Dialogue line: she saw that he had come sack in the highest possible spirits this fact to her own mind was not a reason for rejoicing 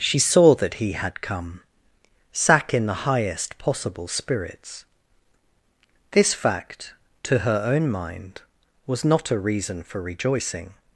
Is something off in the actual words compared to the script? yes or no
no